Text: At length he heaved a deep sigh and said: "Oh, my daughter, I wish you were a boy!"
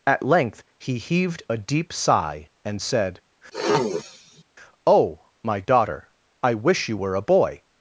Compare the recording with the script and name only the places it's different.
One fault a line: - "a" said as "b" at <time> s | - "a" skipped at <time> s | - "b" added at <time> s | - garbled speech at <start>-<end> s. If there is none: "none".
none